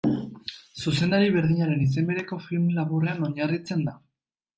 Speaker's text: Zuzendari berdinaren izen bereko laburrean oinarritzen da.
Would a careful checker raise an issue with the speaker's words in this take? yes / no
yes